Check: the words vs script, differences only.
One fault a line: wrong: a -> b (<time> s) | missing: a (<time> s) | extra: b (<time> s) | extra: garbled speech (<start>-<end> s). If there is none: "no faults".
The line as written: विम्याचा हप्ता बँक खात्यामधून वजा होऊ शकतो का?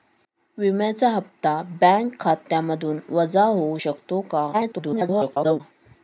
extra: garbled speech (4.5-5.6 s)